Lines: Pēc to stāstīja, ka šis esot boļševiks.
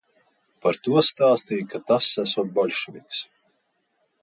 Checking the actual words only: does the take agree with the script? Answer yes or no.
no